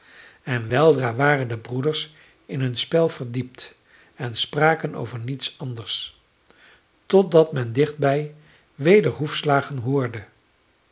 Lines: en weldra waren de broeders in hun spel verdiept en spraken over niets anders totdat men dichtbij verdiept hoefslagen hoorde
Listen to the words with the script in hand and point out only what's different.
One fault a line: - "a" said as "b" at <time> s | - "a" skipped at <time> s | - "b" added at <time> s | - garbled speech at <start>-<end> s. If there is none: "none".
- "verdiept" said as "weder" at 8.7 s